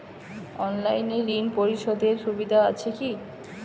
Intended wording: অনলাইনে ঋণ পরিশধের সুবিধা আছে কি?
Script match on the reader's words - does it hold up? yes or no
yes